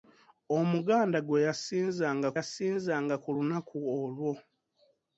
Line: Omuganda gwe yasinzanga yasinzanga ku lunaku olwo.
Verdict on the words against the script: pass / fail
pass